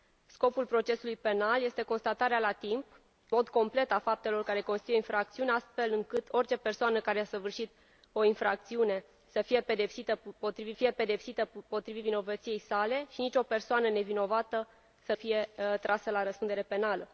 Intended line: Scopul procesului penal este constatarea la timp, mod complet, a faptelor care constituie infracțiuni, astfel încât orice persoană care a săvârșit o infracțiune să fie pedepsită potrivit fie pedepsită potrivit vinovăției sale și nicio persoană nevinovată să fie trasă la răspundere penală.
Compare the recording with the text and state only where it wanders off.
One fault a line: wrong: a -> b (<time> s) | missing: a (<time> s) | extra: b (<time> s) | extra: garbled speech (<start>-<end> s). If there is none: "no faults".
no faults